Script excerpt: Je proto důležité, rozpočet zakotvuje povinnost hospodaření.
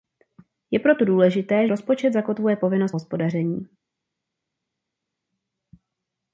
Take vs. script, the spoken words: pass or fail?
pass